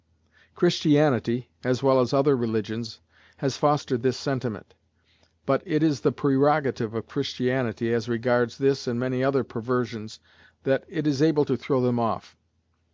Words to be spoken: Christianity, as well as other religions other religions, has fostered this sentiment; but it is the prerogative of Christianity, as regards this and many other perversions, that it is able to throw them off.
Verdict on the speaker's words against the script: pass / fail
fail